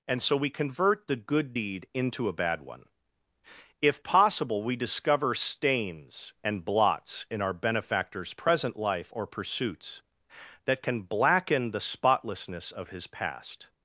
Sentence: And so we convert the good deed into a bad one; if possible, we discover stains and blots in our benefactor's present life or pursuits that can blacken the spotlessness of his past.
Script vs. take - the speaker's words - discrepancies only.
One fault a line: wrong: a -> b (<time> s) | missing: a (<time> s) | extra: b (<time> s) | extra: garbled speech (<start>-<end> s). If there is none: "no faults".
no faults